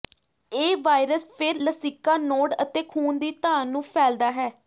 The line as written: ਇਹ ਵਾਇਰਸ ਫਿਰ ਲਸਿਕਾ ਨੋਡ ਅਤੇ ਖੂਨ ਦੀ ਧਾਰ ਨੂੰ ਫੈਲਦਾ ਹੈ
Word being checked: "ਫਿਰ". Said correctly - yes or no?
yes